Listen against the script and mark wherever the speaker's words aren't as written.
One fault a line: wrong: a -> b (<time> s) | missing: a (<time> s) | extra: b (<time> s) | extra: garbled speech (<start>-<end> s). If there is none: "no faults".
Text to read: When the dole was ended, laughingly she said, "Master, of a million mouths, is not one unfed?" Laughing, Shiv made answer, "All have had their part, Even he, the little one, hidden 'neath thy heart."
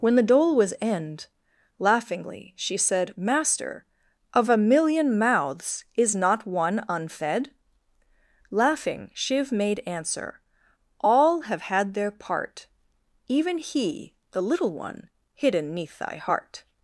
wrong: ended -> end (0.8 s)